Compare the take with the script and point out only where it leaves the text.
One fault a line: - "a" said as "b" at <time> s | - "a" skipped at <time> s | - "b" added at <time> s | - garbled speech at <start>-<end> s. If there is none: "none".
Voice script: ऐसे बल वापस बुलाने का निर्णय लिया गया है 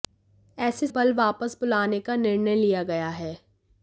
none